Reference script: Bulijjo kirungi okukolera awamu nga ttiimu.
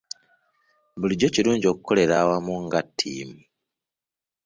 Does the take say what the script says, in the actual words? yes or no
yes